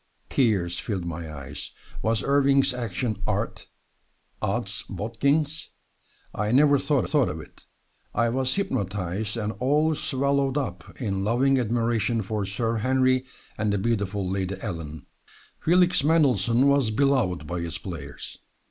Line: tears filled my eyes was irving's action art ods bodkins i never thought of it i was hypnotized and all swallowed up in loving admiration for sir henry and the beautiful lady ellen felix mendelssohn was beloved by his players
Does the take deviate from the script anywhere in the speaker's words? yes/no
yes